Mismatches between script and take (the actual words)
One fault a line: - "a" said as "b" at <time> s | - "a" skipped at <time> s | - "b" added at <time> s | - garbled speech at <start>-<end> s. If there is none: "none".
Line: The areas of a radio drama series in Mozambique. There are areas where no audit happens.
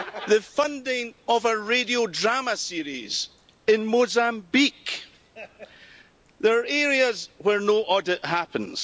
- "areas" said as "funding" at 0.4 s